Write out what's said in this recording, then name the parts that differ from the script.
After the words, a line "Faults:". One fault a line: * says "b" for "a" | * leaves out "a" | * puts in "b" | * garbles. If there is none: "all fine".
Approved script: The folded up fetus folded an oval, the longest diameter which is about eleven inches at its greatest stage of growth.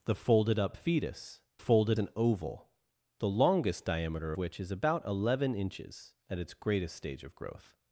The folded up fetus folded an oval, the longest diameter which is about eleven inches at its greatest stage of growth.
Faults:
all fine